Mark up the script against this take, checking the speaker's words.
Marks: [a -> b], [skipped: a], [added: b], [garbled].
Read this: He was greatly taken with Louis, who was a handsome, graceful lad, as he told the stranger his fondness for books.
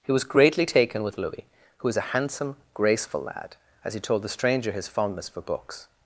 He was greatly taken with Louis, who was a handsome, graceful lad, as he told the stranger his fondness for books.